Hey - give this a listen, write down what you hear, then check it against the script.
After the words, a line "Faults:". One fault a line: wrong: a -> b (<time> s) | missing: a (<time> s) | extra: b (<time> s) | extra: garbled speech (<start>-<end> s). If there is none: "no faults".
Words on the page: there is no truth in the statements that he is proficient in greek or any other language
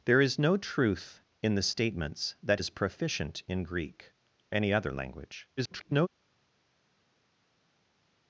there is no truth in the statements that is proficient in greek any other language [garbled]
Faults:
missing: he (2.6 s)
missing: or (4.1 s)
extra: garbled speech (5.6-6.1 s)